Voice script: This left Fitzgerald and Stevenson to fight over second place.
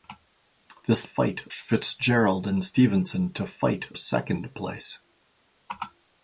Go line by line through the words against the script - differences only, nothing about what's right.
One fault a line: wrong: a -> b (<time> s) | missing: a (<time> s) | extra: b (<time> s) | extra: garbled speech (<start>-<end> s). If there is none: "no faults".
wrong: left -> fight (1.0 s)
missing: over (3.9 s)